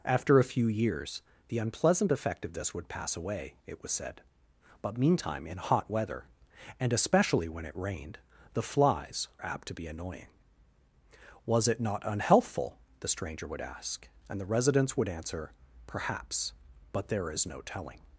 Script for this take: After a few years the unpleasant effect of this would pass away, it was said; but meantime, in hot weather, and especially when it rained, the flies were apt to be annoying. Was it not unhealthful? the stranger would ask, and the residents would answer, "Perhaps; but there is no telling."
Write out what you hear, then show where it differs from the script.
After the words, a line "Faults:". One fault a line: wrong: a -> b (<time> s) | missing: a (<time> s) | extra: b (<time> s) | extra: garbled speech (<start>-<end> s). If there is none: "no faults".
After a few years the unpleasant effect of this would pass away, it was said; but meantime, in hot weather, and especially when it rained, the flies apt to be annoying. Was it not unhealthful? the stranger would ask, and the residents would answer, "Perhaps; but there is no telling."
Faults:
missing: were (9.3 s)